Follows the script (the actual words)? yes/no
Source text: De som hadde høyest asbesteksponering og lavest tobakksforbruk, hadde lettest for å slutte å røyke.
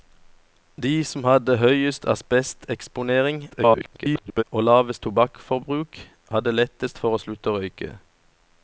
no